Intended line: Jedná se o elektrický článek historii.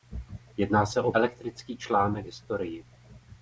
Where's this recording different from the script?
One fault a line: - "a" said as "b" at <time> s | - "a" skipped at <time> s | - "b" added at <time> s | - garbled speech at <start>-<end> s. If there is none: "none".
none